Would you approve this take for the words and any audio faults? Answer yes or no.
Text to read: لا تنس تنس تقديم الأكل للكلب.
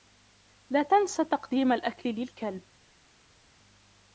no